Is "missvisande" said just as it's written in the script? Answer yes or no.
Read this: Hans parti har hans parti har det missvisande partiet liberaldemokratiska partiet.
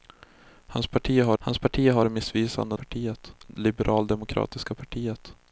yes